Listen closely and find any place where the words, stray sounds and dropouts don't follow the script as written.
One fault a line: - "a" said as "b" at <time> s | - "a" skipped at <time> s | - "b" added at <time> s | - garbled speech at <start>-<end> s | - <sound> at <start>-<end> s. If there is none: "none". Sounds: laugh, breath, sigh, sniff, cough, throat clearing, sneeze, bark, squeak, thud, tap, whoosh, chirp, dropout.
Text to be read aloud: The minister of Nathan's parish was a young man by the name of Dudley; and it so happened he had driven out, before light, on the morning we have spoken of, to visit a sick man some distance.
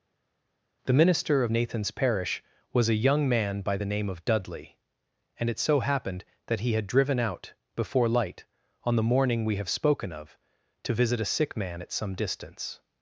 - "that" added at 6.5 s
- "at" added at 11.8 s